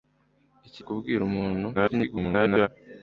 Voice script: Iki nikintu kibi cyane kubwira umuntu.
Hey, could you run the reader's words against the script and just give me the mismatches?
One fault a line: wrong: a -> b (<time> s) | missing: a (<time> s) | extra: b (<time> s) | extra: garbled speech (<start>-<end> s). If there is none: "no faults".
missing: nikintu kibi cyane (0.8 s)
extra: garbled speech (1.7-2.7 s)